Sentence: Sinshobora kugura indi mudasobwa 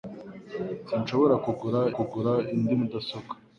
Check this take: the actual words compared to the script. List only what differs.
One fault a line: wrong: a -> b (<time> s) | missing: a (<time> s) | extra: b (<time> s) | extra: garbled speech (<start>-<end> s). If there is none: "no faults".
extra: kugura (2.0 s)